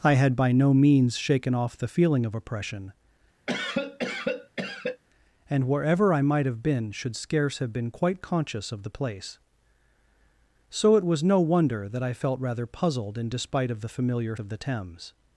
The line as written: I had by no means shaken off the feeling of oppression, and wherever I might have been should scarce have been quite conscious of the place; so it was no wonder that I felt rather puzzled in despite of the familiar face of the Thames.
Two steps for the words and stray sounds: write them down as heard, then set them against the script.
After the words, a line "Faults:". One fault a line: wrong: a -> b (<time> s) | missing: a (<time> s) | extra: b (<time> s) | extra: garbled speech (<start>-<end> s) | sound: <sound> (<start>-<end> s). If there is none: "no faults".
I had by no means shaken off the feeling of oppression, and wherever I might have been should scarce have been quite conscious of the place; so it was no wonder that I felt rather puzzled in despite of the familiar of the Thames.
Faults:
sound: cough (3.5-5.0 s)
missing: face (14.3 s)